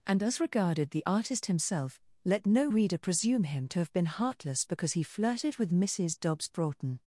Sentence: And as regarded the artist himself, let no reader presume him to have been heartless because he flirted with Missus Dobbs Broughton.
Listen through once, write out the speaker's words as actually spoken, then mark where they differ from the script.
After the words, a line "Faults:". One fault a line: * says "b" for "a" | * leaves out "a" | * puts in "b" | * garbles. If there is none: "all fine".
And as regarded the artist himself, let no reader presume him to have been heartless because he flirted with Missus Dobbs Broughton.
Faults:
all fine